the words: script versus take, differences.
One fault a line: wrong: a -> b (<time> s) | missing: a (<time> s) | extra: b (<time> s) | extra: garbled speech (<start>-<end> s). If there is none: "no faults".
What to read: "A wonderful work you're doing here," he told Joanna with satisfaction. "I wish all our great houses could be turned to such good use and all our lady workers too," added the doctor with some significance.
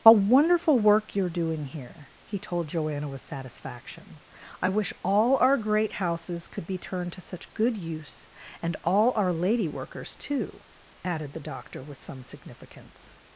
no faults